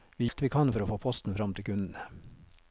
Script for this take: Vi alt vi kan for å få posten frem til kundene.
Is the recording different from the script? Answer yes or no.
no